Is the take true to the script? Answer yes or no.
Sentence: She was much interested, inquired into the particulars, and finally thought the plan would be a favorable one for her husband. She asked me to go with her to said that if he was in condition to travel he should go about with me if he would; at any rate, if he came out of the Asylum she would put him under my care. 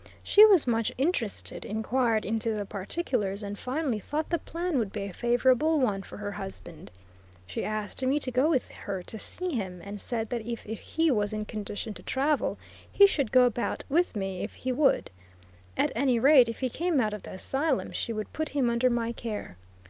no